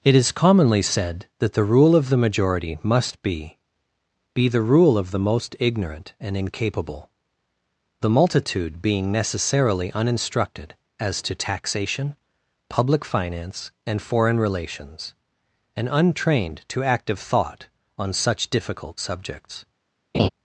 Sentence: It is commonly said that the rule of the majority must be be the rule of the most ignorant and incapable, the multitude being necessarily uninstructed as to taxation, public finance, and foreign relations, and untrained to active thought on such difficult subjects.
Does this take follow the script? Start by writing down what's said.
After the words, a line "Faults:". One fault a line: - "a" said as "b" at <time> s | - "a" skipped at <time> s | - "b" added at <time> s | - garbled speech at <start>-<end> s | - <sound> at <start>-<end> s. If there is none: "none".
It is commonly said that the rule of the majority must be be the rule of the most ignorant and incapable, the multitude being necessarily uninstructed as to taxation, public finance, and foreign relations, and untrained to active thought on such difficult subjects.
Faults:
- laugh at 20.1-20.3 s